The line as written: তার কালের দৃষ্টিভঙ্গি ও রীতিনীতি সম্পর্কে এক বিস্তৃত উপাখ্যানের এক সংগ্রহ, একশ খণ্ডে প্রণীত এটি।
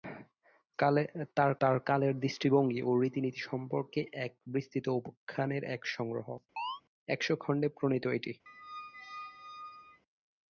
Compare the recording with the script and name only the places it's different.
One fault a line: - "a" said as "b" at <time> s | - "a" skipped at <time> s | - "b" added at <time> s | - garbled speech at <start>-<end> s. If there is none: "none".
- "তার" added at 1.6 s